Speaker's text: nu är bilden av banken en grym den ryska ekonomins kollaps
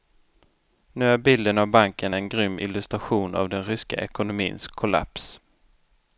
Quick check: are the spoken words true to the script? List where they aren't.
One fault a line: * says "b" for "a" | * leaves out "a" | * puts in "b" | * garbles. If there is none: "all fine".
* puts in "illustration av"